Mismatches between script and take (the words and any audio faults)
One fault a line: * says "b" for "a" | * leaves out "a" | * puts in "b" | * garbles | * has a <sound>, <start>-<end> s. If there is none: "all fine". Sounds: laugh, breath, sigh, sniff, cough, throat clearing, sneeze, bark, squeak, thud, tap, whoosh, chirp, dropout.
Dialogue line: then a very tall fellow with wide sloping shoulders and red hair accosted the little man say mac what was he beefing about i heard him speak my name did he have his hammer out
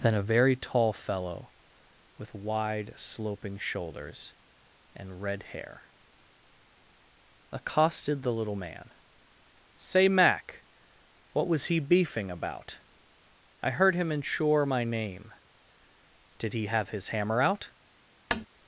* says "ensure" for "speak"
* has a tap, 18.3-18.5 s